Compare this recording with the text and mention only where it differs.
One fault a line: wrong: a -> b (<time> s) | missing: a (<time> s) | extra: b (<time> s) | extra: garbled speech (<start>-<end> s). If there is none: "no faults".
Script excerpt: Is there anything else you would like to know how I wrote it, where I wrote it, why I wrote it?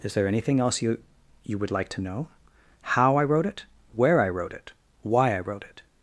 extra: you (1.4 s)